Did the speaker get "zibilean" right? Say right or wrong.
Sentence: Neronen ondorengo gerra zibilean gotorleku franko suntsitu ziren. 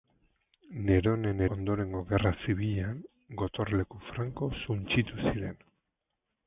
right